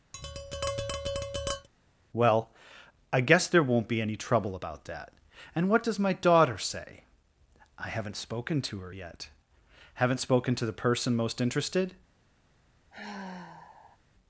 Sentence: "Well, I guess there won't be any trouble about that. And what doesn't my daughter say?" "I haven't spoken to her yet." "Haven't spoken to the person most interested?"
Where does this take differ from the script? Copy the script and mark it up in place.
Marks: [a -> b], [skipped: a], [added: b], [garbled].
"Well, I guess there won't be any trouble about that. And what [doesn't -> does] my daughter say?" "I haven't spoken to her yet." "Haven't spoken to the person most interested?"